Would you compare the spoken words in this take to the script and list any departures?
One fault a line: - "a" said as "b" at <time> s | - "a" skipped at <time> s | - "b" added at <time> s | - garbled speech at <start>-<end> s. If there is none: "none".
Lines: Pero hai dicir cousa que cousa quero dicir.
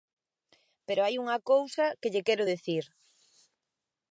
- "dicir" said as "unha" at 1.2 s
- "cousa" said as "lle" at 2.1 s